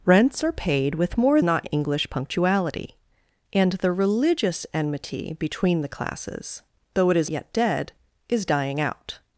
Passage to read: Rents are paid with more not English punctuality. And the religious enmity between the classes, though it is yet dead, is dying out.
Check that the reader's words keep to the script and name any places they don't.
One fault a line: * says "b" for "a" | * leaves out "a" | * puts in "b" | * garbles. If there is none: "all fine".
all fine